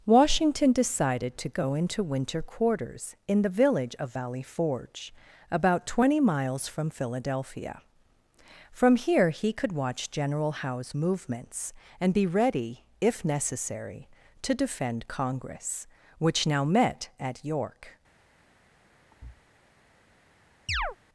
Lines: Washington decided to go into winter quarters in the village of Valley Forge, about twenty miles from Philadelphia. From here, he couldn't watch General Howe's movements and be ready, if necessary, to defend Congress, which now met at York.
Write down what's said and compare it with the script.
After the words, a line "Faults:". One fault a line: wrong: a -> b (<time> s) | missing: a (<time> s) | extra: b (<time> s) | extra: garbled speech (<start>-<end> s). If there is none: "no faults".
Washington decided to go into winter quarters in the village of Valley Forge, about twenty miles from Philadelphia. From here, he could watch General Howe's movements and be ready, if necessary, to defend Congress, which now met at York.
Faults:
wrong: couldn't -> could (9.5 s)